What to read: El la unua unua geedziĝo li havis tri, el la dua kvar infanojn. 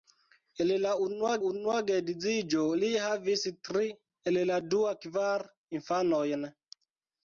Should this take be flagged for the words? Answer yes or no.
no